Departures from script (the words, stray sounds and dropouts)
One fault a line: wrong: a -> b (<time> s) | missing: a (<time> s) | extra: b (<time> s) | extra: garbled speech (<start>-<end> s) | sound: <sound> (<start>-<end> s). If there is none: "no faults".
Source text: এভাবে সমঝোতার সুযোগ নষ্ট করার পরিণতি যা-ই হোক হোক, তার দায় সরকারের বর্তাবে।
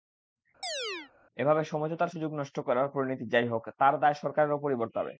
sound: chirp (0.6-1.1 s)
missing: হোক (3.6 s)
extra: ওপরই (4.5 s)